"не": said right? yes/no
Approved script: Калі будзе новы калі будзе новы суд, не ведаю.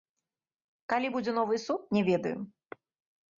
yes